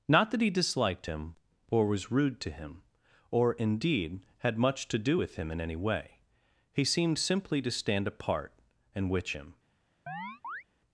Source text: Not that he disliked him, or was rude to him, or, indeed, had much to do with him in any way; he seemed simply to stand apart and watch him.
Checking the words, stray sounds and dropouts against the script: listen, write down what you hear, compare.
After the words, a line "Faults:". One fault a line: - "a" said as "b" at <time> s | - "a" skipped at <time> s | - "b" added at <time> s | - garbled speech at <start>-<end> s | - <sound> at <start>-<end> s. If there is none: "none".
Not that he disliked him, or was rude to him, or, indeed, had much to do with him in any way; he seemed simply to stand apart and witch him.
Faults:
- "watch" said as "witch" at 9.1 s
- chirp at 10.1-10.6 s